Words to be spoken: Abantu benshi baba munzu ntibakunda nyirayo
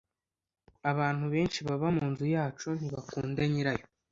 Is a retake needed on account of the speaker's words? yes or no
yes